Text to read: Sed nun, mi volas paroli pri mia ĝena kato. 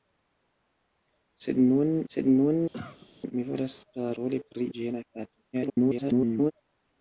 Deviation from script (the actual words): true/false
true